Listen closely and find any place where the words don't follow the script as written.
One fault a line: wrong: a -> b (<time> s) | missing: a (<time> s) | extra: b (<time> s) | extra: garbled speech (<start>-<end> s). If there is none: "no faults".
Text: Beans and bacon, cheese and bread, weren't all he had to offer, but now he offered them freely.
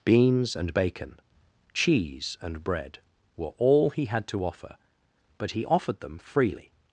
wrong: weren't -> were (3.4 s)
missing: now (5.5 s)